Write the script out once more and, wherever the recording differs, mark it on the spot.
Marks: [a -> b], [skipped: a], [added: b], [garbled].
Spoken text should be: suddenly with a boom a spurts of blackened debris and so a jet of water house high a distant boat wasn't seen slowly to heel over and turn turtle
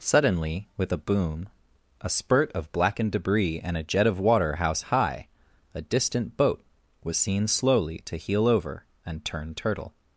suddenly with a boom a [spurts -> spurt] of blackened debris and [skipped: so] a jet of water house high a distant boat [wasn't -> was] seen slowly to heel over and turn turtle